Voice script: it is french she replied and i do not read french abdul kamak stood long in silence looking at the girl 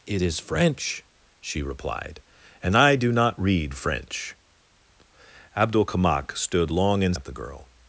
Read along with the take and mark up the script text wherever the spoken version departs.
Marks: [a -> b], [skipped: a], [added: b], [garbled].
it is french she replied and i do not read french abdul kamak stood long in [skipped: silence looking] at the girl